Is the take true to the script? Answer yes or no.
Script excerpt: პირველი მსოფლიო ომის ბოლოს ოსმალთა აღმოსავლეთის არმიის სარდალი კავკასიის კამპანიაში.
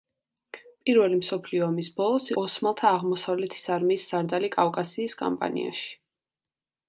yes